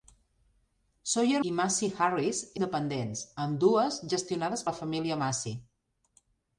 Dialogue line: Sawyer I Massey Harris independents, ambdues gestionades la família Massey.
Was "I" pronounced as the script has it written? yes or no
yes